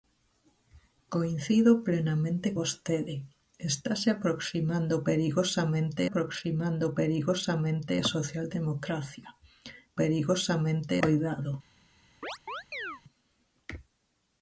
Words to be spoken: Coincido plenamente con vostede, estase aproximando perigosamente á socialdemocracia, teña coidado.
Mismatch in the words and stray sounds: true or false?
true